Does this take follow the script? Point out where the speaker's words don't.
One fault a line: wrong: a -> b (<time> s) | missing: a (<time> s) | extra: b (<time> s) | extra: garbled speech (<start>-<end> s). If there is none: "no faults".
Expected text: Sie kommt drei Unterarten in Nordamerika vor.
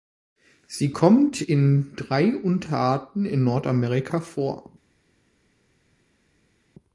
extra: in (1.4 s)